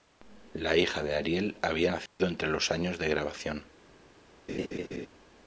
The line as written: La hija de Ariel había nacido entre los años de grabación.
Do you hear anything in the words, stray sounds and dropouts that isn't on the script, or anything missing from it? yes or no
yes